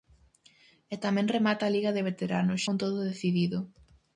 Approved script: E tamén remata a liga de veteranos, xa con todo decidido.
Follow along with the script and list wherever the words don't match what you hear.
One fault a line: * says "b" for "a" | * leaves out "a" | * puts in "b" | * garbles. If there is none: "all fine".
* leaves out "xa"